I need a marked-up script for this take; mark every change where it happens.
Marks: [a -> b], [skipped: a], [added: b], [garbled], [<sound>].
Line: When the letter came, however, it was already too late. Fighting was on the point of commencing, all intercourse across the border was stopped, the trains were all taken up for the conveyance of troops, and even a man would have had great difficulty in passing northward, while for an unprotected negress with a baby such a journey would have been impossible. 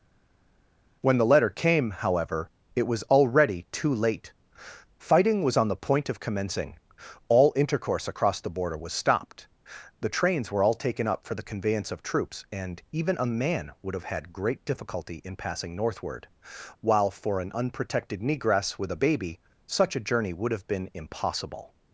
When the letter came, however, it was already too late. Fighting was on the point of commencing, all intercourse across the border was stopped, the trains were all taken up for the conveyance of troops, and even a man would have had great difficulty in passing northward, while for an unprotected negress with a baby such a journey would have been impossible.